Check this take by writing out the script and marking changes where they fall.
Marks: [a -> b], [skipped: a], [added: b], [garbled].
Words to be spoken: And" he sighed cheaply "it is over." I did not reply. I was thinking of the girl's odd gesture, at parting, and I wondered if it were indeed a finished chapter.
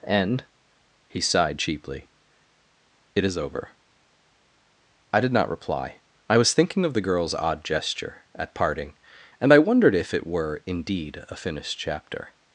And" he sighed cheaply "it is over." I did not reply. I was thinking of the girl's odd gesture, at parting, and I wondered if it were indeed a finished chapter.